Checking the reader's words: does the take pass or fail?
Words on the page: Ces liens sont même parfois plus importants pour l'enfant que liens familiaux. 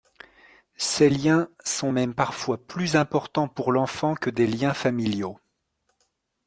fail